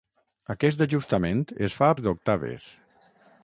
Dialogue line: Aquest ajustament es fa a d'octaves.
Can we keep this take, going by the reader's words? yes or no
yes